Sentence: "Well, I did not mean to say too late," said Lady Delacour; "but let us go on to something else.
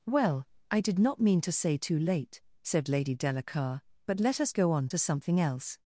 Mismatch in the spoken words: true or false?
false